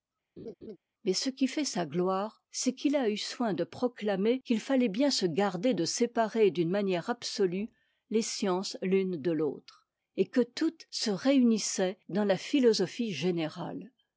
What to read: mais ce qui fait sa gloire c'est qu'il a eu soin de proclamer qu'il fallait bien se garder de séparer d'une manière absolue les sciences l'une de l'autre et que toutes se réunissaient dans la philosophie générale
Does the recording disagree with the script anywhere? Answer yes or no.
no